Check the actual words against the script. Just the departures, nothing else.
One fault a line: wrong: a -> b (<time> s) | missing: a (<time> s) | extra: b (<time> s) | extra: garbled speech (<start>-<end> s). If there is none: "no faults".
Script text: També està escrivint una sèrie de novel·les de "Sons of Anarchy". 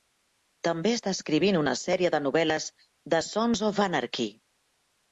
no faults